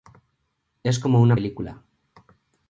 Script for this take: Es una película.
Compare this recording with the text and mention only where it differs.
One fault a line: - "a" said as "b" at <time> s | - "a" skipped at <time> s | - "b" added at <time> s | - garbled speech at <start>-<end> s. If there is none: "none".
- "como" added at 1.0 s